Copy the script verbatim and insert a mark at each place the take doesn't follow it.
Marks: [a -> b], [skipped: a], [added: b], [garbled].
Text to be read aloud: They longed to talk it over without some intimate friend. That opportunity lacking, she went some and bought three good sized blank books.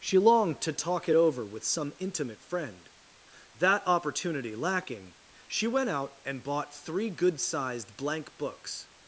[They -> She] longed to talk it over [without -> with] some intimate friend. That opportunity lacking, she went [some -> out] and bought three good sized blank books.